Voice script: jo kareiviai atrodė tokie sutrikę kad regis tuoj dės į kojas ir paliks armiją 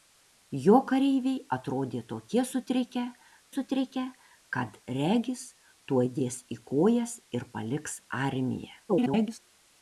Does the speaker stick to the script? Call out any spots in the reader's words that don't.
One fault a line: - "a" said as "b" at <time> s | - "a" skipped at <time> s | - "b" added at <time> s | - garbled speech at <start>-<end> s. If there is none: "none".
- "sutrikę" added at 3.5 s
- garbled speech at 8.9-9.4 s